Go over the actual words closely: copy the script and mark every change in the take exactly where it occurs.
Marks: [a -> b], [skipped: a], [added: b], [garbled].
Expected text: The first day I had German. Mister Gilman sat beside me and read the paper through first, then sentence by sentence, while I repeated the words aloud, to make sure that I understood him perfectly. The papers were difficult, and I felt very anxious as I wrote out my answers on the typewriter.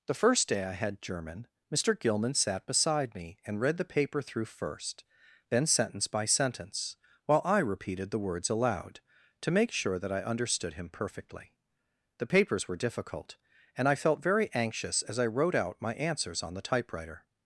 The first day I had German. Mister Gilman sat beside me and read the paper through first, then sentence by sentence, while I repeated the words aloud, to make sure that I understood him perfectly. The papers were difficult, and I felt very anxious as I wrote out my answers on the typewriter.